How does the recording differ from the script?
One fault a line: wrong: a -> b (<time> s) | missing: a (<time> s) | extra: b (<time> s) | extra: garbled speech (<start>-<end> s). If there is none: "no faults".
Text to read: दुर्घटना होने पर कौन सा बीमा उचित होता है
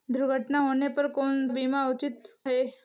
missing: सा (1.5 s)
missing: होता (2.3 s)